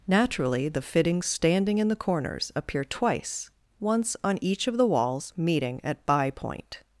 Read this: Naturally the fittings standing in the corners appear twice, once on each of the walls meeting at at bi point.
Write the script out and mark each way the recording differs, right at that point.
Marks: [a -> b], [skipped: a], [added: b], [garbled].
Naturally the fittings standing in the corners appear twice, once on each of the walls meeting at [skipped: at] bi point.